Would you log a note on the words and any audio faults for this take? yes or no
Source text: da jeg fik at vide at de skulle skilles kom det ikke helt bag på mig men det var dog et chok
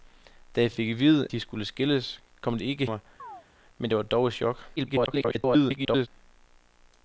yes